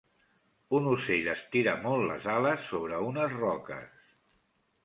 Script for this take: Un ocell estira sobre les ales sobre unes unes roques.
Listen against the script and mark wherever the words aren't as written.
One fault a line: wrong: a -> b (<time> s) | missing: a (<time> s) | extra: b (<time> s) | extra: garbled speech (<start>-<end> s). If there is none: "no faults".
wrong: sobre -> molt (1.9 s)
missing: unes (3.4 s)